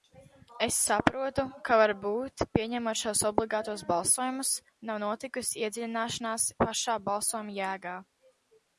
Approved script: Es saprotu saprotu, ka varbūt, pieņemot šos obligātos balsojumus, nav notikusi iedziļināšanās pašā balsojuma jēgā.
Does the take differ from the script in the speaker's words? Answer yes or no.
yes